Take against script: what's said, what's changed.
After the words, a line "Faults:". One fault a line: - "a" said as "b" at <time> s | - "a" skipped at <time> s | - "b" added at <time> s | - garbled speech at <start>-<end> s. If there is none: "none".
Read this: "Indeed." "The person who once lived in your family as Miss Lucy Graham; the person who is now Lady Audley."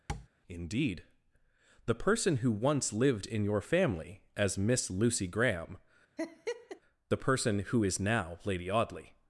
"Indeed." "The person who once lived in your family as Miss Lucy Graham; the person who is now Lady Audley."
Faults:
none